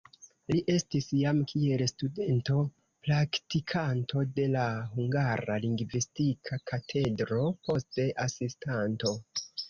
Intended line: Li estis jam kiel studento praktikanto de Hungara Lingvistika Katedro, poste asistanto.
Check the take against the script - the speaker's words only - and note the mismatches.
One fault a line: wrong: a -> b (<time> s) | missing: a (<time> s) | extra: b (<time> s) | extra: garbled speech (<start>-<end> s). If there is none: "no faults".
extra: la (4.5 s)